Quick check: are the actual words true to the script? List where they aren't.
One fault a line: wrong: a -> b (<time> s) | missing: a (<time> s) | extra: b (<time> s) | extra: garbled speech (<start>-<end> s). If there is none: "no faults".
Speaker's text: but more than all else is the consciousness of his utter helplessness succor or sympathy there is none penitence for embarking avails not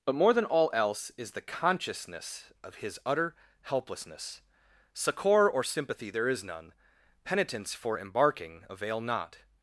wrong: avails -> avail (8.7 s)